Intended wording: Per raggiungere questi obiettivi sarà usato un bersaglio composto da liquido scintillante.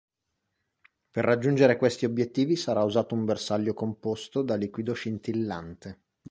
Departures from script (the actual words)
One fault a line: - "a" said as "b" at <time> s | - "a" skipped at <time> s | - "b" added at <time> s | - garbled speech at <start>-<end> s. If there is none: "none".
none